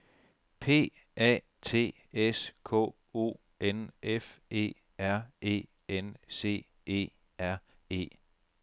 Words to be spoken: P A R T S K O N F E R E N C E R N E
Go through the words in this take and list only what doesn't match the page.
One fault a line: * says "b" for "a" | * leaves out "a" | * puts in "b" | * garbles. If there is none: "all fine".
* leaves out "R"
* leaves out "N"